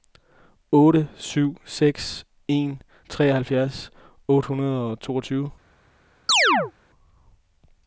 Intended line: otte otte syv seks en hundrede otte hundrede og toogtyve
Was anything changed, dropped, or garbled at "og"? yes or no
no